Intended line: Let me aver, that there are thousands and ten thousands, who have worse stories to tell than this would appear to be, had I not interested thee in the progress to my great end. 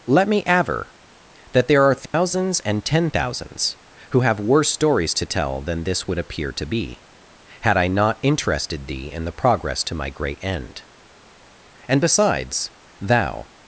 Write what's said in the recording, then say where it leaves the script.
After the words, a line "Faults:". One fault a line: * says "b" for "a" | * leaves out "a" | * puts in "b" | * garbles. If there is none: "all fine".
Let me aver, that there are thousands and ten thousands, who have worse stories to tell than this would appear to be, had I not interested thee in the progress to my great end. And besides, thou
Faults:
* puts in "And besides thou"